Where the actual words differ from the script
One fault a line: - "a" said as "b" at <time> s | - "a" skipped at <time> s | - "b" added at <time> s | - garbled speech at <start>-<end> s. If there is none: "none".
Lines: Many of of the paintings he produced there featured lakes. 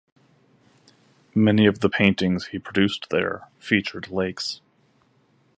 - "of" skipped at 1.8 s